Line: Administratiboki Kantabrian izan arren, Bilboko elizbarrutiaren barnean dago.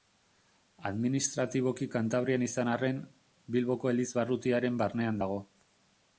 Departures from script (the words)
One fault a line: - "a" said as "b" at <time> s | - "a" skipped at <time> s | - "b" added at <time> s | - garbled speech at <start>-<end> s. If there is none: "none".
none